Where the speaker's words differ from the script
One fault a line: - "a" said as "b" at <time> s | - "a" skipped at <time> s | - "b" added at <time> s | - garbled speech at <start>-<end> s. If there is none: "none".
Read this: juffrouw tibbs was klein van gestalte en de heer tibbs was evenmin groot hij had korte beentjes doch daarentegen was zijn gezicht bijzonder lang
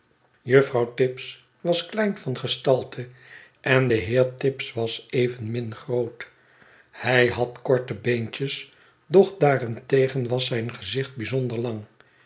none